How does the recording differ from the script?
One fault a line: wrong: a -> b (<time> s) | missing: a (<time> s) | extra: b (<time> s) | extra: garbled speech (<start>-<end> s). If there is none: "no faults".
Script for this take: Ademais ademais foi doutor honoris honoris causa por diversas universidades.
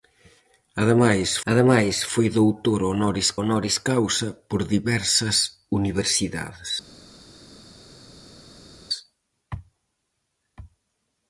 no faults